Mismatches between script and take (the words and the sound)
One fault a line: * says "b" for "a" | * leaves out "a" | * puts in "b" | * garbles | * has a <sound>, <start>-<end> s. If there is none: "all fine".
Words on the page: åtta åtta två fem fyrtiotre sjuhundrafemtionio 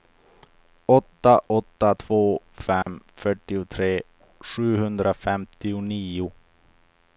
* has a dropout, 2.8-2.9 s